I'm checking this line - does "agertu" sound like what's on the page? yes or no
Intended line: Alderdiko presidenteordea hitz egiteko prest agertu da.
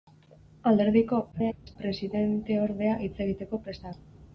no